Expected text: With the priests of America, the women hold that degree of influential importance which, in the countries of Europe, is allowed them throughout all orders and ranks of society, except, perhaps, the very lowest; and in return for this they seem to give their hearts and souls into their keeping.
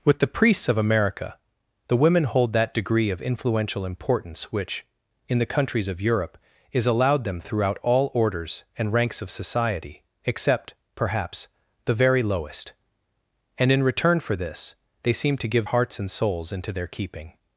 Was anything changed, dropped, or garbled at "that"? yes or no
no